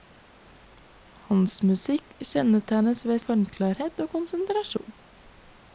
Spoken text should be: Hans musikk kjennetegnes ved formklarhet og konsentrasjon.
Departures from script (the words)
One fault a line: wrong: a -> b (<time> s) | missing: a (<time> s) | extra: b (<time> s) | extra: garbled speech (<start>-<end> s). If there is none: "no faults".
no faults